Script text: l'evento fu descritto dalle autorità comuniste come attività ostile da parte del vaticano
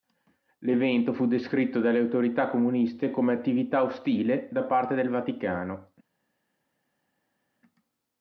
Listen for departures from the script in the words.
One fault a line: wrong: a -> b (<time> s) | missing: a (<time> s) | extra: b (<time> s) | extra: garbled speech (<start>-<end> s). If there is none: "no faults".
no faults